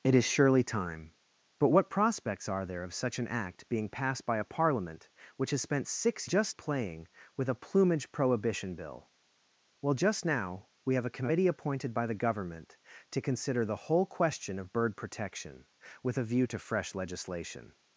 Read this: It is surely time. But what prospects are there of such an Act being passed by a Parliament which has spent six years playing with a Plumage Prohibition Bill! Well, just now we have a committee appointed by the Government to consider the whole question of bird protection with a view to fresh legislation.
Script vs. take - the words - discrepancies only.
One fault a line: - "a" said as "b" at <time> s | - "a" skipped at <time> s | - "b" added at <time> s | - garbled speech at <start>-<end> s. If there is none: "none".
- "years" said as "just" at 6.2 s